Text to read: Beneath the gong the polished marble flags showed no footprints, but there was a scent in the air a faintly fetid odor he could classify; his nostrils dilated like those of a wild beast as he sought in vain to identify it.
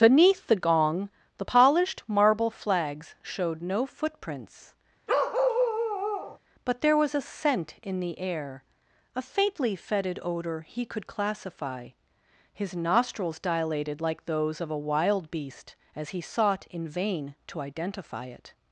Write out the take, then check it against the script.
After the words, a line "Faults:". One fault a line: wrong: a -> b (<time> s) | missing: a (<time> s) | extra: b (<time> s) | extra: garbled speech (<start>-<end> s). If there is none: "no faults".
Beneath the gong the polished marble flags showed no footprints, but there was a scent in the air a faintly fetid odor he could classify; his nostrils dilated like those of a wild beast as he sought in vain to identify it.
Faults:
no faults